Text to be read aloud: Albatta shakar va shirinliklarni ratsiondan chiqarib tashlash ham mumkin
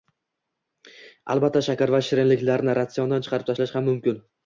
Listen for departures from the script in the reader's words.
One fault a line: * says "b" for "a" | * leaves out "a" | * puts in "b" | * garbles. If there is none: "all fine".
all fine